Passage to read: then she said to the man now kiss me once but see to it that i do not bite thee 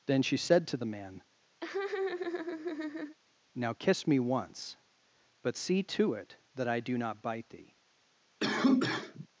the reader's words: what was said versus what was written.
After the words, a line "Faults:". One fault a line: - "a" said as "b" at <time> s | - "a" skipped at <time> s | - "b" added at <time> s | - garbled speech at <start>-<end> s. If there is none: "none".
then she said to the man now kiss me once but see to it that i do not bite thee
Faults:
none